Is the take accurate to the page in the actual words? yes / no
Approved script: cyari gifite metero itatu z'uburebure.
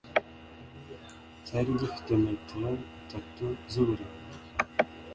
yes